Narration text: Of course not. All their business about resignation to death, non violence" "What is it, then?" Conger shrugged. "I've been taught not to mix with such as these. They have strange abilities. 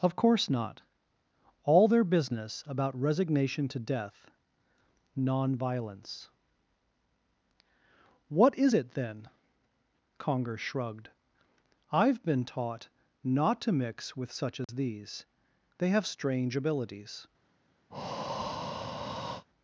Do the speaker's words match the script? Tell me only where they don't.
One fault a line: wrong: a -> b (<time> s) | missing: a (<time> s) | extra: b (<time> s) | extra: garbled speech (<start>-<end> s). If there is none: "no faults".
no faults